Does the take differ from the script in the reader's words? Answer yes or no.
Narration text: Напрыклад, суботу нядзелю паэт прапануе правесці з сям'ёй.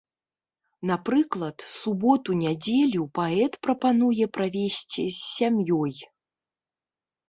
no